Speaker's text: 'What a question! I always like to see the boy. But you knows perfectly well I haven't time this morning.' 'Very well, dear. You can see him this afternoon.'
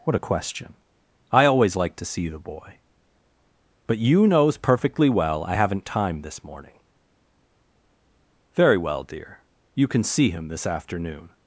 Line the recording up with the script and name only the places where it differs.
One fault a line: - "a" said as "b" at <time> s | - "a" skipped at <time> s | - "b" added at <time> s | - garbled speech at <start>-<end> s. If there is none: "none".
none